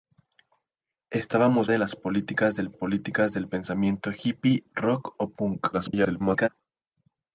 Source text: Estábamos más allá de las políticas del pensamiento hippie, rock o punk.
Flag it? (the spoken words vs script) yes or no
yes